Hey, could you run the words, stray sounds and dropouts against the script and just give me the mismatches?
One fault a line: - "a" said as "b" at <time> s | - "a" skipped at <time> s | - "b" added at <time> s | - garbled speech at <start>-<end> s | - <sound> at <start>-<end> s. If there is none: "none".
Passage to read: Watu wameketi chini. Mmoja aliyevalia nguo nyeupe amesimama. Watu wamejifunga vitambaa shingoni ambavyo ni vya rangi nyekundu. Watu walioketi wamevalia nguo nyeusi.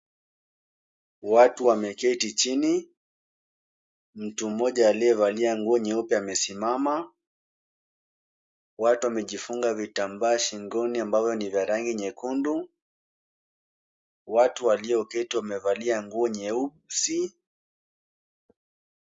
- "Mtu" added at 4.1 s